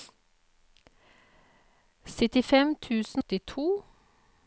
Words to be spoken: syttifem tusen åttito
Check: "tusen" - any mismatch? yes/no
no